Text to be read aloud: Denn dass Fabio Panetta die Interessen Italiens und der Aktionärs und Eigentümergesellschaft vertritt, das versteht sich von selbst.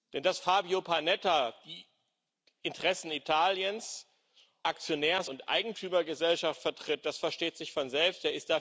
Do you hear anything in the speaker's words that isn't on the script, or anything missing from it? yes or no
yes